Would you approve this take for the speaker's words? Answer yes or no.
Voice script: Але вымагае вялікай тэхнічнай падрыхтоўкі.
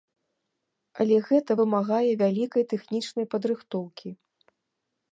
no